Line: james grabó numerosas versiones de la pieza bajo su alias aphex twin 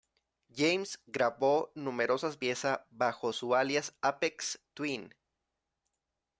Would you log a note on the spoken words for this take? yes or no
yes